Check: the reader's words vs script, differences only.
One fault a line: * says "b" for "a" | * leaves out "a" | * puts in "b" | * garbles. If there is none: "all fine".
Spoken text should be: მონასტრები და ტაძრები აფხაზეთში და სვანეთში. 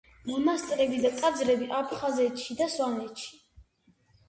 all fine